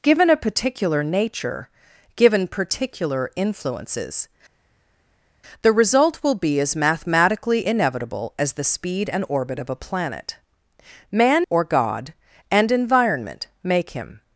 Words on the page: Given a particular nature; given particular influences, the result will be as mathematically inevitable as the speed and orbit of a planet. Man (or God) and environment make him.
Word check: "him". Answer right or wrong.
right